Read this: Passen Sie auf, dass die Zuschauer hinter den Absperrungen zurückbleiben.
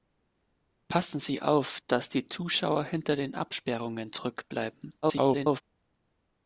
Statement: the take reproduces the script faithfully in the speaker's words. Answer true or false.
false